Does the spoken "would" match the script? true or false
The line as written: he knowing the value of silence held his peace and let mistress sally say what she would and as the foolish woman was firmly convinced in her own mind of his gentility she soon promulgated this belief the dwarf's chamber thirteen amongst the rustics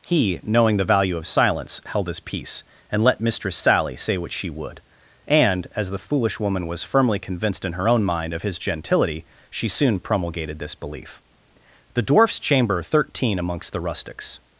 true